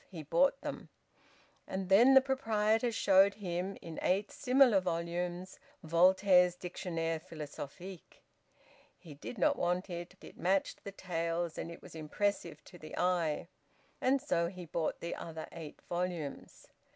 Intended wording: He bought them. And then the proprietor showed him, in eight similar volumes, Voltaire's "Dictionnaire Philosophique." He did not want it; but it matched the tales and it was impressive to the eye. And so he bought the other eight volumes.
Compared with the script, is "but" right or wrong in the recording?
wrong